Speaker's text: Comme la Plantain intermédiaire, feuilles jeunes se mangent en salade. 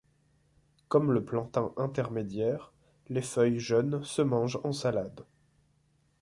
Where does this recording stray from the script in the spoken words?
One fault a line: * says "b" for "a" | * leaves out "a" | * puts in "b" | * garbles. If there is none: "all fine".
* says "le" for "la"
* puts in "les"